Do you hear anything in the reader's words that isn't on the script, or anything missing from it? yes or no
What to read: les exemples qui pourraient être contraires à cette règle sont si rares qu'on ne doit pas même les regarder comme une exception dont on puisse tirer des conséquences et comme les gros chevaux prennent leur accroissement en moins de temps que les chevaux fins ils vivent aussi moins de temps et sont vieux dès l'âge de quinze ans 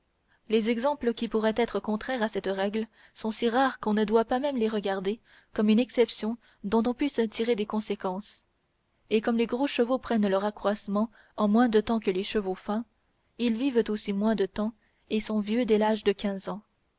no